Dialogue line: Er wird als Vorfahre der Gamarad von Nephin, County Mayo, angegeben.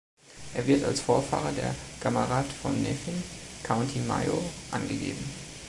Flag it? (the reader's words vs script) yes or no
no